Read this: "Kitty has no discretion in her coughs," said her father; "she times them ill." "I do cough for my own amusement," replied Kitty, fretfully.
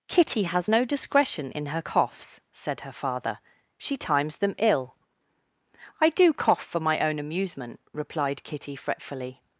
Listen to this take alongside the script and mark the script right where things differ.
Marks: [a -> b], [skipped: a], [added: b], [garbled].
"Kitty has no discretion in her coughs," said her father; "she times them ill." "I do cough for my own amusement," replied Kitty, fretfully.